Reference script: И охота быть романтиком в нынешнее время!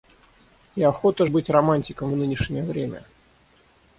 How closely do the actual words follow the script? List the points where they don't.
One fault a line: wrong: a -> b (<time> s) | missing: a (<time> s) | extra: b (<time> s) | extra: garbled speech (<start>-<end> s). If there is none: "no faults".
no faults